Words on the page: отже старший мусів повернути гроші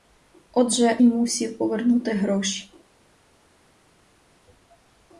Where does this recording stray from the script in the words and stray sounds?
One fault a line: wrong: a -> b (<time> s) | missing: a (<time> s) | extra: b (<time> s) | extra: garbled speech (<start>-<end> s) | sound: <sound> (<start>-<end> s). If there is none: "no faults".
missing: старший (1.0 s)